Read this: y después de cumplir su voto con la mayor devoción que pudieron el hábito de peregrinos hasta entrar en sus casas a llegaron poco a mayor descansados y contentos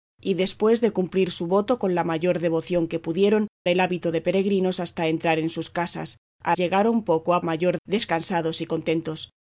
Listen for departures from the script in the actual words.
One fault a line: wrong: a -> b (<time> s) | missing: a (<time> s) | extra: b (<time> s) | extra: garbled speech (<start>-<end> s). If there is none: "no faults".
no faults